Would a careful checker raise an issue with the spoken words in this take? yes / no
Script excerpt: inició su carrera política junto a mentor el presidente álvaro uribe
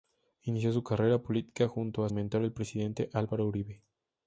no